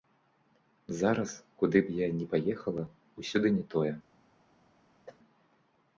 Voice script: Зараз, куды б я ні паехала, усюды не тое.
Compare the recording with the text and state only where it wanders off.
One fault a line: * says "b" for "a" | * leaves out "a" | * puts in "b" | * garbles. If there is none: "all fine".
all fine